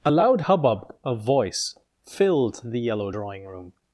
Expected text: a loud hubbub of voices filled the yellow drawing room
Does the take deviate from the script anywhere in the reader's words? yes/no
yes